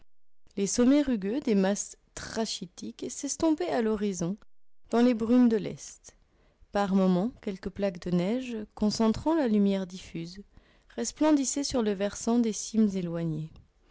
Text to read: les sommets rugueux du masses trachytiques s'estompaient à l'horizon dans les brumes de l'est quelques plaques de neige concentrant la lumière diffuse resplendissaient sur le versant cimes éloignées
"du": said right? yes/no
no